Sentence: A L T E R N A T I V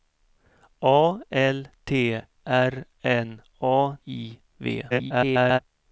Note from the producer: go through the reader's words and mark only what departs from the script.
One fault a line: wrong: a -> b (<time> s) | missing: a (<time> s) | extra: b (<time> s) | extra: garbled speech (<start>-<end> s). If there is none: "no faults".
missing: E (2.2 s)
missing: T (4.0 s)
extra: garbled speech (4.9-5.6 s)